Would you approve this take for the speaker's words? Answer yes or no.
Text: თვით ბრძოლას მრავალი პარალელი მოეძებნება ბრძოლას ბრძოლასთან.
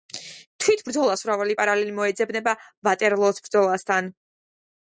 no